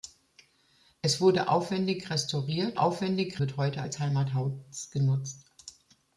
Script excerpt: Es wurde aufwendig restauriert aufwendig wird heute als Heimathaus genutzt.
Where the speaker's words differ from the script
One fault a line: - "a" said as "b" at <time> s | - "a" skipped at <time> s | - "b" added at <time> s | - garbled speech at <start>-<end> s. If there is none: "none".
none